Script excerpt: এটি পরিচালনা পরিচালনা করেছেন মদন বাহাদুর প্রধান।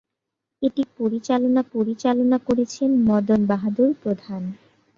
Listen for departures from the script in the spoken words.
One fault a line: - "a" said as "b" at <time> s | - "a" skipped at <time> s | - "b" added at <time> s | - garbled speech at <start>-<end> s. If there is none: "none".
none